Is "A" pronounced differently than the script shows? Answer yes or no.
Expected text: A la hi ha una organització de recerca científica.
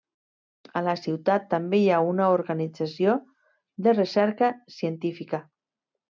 no